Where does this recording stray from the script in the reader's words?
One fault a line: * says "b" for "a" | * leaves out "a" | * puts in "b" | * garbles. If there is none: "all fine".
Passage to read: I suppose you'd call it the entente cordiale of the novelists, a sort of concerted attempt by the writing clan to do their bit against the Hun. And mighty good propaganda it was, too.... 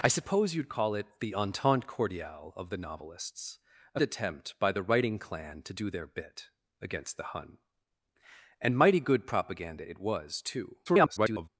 * leaves out "sort of concerted"
* garbles